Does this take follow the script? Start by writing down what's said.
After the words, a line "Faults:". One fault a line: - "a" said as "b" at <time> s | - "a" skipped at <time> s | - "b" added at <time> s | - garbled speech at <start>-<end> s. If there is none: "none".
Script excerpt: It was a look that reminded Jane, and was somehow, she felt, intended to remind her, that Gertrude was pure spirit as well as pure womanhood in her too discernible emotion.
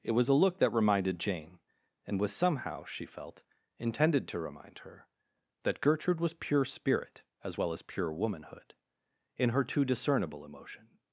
It was a look that reminded Jane, and was somehow, she felt, intended to remind her, that Gertrude was pure spirit as well as pure womanhood in her too discernible emotion.
Faults:
none